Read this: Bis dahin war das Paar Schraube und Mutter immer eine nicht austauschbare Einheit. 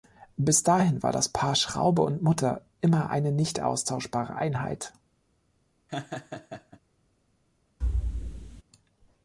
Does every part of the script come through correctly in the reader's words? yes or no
yes